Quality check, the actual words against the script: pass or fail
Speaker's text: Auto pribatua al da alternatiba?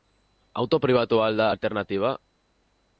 pass